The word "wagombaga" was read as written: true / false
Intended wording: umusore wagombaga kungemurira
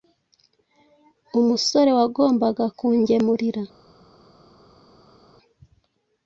true